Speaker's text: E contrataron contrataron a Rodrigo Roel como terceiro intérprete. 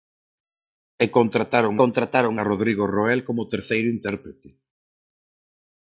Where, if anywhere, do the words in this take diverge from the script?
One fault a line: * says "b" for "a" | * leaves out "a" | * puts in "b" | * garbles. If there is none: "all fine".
all fine